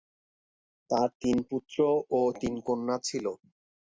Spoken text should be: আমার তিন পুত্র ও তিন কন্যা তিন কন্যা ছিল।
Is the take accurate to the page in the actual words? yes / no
no